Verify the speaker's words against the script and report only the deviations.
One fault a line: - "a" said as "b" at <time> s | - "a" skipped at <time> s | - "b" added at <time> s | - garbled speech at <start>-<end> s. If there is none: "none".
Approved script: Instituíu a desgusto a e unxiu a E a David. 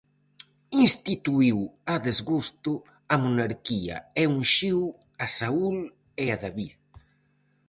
- "monarquía" added at 3.2 s
- "Saúl" added at 5.4 s